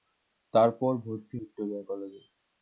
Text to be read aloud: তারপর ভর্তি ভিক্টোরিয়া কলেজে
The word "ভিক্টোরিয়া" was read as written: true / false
true